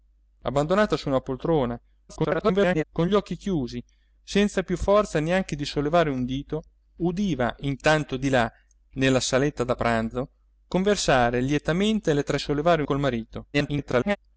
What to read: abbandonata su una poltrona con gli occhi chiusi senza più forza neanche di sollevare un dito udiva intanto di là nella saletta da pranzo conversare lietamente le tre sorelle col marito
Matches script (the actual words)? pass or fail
fail